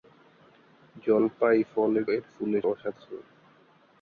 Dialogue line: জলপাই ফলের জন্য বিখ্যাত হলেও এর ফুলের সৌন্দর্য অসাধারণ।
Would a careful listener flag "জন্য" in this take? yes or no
yes